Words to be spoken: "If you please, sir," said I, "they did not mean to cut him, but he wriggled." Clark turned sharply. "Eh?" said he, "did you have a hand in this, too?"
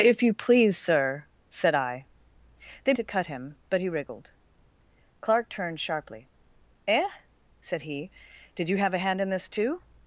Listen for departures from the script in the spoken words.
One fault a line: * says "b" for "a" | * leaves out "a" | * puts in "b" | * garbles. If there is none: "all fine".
* leaves out "did not mean"